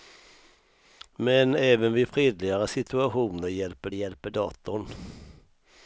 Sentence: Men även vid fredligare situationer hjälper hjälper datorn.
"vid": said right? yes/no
yes